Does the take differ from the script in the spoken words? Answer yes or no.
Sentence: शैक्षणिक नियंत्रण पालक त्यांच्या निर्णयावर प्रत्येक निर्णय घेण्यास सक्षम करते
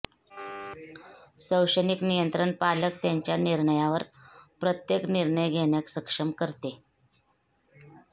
no